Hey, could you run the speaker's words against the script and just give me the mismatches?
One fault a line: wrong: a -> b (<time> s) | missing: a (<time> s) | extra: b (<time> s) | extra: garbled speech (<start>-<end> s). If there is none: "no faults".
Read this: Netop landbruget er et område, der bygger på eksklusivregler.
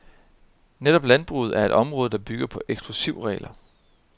no faults